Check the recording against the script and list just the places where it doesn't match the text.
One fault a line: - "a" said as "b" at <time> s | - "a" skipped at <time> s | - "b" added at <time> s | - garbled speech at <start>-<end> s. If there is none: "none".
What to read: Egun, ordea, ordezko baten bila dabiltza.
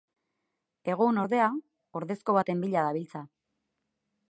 none